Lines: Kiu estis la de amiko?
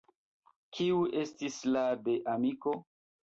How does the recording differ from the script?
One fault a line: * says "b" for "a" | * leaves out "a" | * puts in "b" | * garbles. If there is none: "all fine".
all fine